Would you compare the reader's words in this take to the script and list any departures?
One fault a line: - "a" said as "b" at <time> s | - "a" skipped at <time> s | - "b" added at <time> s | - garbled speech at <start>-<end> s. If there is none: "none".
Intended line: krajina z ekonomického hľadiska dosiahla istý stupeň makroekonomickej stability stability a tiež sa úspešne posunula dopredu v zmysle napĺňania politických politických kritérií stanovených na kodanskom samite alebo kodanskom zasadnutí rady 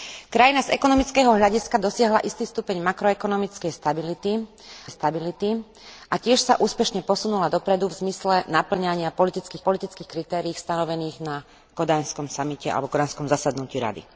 none